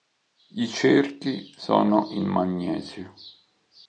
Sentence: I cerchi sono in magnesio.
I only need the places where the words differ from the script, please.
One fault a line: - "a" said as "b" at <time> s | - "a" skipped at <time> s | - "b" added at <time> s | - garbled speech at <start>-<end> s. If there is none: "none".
none